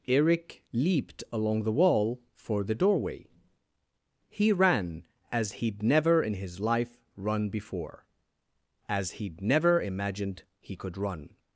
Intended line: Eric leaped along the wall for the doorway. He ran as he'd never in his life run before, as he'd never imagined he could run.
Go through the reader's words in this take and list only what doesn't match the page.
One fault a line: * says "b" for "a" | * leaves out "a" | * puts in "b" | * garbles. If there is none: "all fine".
all fine